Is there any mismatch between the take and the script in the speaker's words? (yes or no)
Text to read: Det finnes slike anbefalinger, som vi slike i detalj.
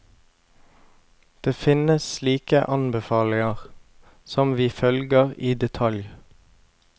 yes